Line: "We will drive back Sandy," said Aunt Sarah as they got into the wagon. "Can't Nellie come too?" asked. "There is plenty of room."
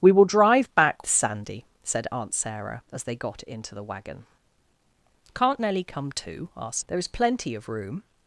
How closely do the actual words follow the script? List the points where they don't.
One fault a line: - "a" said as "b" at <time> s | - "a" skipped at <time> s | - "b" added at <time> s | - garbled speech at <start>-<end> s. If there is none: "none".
none